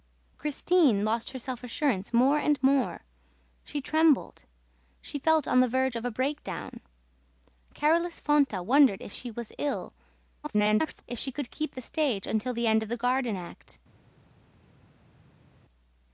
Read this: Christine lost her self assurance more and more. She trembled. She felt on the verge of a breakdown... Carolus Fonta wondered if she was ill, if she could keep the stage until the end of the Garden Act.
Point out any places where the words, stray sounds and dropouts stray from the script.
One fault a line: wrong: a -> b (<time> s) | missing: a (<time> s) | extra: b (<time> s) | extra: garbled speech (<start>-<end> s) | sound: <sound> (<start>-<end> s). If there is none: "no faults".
extra: garbled speech (10.4-11.0 s)